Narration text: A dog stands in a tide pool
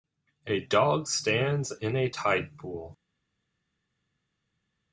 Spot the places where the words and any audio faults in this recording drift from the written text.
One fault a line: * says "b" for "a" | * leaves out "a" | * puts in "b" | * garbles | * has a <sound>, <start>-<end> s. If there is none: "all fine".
all fine